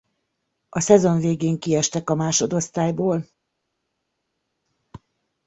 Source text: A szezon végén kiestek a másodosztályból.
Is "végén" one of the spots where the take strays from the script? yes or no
no